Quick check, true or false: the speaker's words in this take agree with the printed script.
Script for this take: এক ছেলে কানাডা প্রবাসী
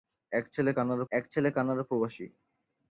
false